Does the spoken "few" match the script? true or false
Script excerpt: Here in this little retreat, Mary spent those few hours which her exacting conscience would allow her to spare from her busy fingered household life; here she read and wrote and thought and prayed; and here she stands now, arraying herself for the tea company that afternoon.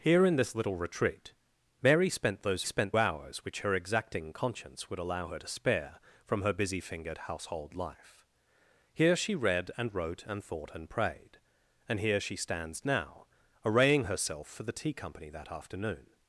false